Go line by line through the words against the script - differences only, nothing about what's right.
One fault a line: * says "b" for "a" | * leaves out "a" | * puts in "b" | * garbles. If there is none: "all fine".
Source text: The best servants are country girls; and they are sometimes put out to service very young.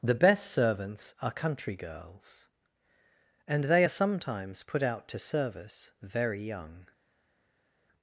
all fine